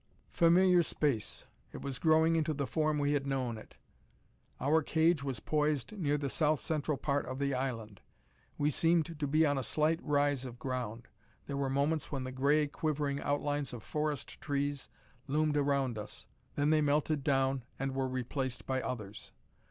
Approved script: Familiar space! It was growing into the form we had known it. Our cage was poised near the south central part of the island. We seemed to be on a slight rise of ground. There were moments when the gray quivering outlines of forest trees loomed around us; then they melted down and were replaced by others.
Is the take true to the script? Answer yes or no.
yes